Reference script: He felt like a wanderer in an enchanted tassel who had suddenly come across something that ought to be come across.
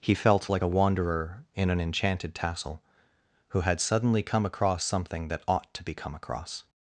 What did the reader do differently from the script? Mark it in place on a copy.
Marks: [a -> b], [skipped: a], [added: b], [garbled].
He felt like a wanderer in an enchanted tassel who had suddenly come across something that ought to be come across.